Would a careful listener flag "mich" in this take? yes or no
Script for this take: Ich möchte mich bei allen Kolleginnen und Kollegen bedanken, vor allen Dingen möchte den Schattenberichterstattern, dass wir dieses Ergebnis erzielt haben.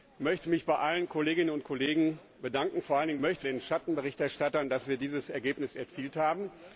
no